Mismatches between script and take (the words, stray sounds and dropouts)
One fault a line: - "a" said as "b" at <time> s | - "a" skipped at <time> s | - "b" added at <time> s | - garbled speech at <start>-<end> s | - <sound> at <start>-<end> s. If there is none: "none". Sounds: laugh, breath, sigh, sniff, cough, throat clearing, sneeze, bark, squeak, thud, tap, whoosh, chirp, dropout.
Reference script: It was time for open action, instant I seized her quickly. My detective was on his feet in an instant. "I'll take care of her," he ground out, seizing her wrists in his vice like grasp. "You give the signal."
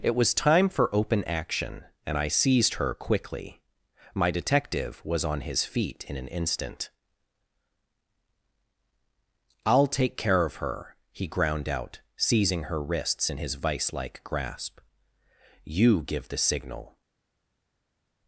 - "instant" said as "and" at 2.1 s